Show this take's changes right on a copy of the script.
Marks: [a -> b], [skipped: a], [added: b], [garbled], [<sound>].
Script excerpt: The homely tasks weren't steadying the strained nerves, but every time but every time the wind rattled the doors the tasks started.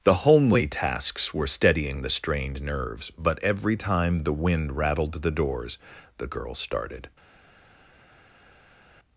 The homely tasks [weren't -> were] steadying the strained nerves, but every time [skipped: but every time] the wind rattled the doors the [tasks -> girl] started.